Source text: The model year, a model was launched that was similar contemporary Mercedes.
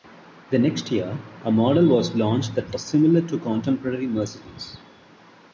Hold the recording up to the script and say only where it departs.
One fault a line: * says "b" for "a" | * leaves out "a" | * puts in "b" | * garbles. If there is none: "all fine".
* says "next" for "model"
* puts in "to"